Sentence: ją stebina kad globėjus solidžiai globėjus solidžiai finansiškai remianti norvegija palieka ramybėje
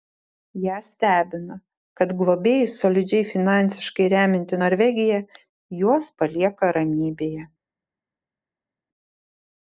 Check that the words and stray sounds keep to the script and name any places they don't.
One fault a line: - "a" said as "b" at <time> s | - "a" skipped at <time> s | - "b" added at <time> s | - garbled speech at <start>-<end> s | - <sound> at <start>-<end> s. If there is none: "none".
- "globėjus solidžiai" skipped at 3.3 s
- "juos" added at 5.8 s